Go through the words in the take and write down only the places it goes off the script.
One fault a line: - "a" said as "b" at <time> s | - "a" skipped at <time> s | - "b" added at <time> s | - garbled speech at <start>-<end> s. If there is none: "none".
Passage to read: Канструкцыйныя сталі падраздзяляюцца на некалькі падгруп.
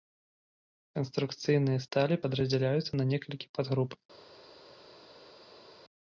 none